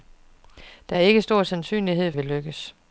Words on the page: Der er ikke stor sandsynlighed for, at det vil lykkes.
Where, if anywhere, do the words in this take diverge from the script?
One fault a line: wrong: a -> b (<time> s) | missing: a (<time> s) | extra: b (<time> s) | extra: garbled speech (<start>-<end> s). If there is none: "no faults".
missing: for at det (2.1 s)